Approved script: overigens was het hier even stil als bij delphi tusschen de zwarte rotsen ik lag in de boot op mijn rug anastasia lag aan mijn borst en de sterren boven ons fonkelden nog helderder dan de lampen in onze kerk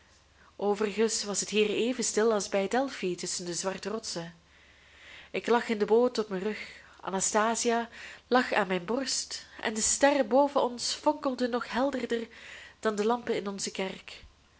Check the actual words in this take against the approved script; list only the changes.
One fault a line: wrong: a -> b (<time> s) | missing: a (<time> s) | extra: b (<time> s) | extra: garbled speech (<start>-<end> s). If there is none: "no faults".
no faults